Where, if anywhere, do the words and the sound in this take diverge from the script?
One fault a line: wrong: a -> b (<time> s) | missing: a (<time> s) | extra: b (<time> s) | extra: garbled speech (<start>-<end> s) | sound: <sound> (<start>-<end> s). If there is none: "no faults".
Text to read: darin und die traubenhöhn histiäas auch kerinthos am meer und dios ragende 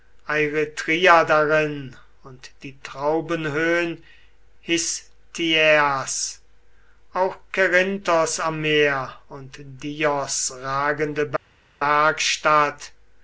no faults